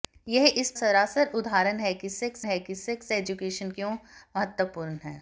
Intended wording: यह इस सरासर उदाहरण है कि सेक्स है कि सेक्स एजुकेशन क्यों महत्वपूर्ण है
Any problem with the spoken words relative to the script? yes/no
no